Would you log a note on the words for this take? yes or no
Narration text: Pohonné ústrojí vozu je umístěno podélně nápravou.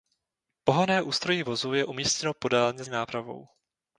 no